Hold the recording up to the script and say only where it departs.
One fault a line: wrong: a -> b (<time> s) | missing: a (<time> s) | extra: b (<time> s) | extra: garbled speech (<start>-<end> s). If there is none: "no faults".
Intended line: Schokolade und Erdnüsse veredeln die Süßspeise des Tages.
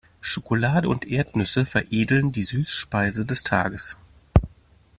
no faults